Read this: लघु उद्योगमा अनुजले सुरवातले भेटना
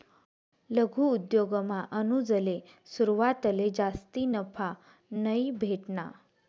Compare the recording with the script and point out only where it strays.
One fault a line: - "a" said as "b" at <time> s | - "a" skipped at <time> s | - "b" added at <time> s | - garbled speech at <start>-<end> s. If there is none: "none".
- "जास्ती नफा नयी" added at 3.8 s